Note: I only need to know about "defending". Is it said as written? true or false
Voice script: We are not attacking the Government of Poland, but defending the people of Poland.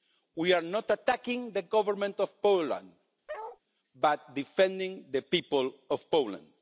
true